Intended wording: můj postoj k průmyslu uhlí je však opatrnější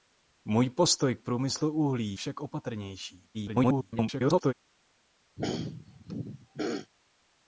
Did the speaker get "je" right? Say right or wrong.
wrong